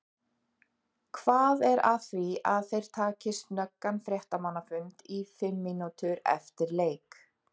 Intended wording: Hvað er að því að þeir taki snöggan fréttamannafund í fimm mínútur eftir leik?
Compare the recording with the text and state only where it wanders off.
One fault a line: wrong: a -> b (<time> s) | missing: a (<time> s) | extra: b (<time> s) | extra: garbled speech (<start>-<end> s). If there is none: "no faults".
no faults